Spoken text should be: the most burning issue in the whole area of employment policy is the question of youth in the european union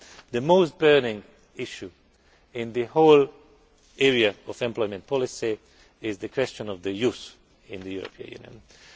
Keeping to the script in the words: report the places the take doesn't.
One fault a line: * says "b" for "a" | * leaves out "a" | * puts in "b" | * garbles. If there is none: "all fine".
all fine